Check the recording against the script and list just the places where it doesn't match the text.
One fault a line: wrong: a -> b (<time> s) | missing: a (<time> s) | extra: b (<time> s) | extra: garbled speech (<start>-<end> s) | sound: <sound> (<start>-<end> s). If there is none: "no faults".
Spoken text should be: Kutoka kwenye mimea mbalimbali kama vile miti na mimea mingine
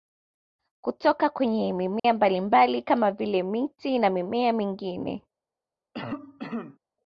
sound: dropout (2.0-2.0 s)
sound: cough (5.9-6.8 s)